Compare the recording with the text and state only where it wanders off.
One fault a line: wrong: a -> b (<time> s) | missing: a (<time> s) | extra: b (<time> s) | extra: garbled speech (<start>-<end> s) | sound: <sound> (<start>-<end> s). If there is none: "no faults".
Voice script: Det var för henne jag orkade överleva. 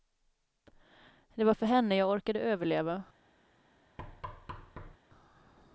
sound: thud (4.0-5.0 s)